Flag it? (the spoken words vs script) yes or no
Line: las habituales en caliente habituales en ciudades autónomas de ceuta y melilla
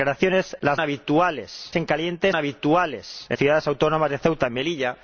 no